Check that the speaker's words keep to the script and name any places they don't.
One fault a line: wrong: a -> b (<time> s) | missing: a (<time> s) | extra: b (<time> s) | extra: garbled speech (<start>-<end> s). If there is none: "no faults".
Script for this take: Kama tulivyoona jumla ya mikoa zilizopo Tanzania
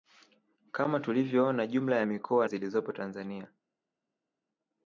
no faults